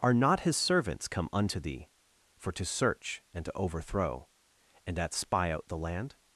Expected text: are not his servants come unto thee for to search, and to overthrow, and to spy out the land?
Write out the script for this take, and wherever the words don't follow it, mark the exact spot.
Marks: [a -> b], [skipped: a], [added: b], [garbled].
are not his servants come unto thee for to search, and to overthrow, and [to -> at] spy out the land?